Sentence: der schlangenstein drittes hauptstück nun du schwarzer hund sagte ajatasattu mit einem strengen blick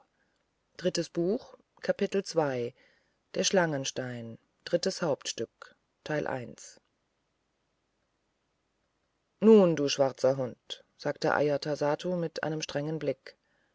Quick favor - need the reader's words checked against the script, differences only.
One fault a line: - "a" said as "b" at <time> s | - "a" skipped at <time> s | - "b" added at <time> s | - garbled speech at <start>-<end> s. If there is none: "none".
none